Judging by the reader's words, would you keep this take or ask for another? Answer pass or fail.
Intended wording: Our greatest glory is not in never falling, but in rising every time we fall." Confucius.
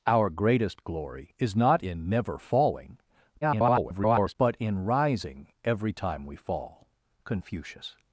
fail